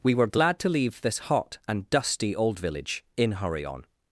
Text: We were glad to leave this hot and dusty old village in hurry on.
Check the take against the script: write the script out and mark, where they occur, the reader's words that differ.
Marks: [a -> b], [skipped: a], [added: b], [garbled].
We were glad to leave this hot and dusty old village in hurry on.